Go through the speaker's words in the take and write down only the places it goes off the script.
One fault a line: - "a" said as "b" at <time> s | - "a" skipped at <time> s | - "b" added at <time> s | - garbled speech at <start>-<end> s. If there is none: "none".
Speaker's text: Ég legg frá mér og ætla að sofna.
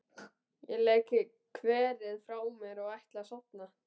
- "kverið" added at 1.6 s